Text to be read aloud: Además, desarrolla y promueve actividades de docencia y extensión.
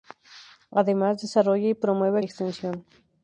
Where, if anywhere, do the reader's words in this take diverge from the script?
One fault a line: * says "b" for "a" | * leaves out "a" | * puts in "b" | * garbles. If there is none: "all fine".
* leaves out "actividades de docencia"